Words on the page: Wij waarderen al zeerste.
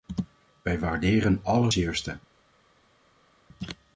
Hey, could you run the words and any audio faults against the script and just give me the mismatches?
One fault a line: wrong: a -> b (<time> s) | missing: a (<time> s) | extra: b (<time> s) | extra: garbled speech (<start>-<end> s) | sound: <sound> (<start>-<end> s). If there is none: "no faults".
no faults